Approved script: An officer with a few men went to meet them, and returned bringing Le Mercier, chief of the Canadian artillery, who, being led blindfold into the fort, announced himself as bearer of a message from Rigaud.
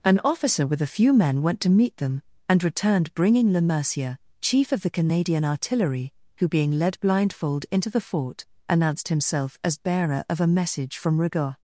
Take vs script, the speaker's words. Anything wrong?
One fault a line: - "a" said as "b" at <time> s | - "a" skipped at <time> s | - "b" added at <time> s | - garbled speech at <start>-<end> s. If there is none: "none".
none